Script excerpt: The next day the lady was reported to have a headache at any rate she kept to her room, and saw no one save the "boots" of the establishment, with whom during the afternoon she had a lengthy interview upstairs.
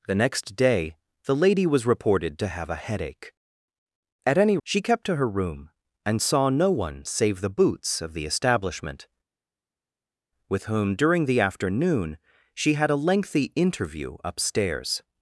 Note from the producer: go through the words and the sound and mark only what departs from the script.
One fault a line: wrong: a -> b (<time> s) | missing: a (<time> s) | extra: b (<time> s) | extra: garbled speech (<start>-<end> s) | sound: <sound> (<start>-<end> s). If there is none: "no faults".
missing: rate (4.6 s)